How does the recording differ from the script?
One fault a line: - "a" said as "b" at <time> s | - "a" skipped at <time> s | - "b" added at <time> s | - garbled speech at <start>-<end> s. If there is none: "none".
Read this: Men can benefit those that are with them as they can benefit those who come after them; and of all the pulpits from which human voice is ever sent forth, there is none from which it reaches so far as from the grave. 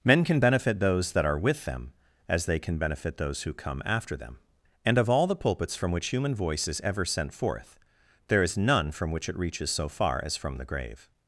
none